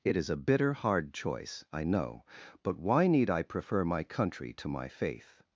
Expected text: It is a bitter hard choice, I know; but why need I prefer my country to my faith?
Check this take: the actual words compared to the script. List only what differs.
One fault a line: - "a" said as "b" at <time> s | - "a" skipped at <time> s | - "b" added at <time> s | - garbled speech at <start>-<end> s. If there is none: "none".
none